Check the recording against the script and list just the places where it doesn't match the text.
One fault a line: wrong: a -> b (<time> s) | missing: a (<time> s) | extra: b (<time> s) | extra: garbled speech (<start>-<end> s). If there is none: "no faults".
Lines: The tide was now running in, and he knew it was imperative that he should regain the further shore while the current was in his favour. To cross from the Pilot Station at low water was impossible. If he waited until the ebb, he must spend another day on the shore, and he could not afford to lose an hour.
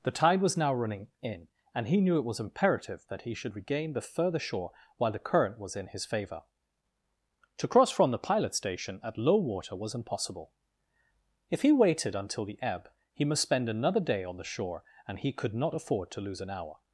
no faults